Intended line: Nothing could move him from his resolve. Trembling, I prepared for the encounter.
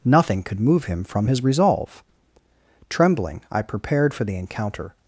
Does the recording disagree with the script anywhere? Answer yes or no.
no